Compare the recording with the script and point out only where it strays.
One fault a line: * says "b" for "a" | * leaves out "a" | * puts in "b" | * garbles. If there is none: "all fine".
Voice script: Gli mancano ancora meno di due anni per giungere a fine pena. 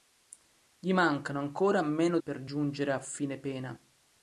* leaves out "di due anni"